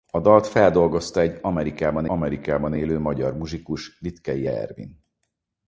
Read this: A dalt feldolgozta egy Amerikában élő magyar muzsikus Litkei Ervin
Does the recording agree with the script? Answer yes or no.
no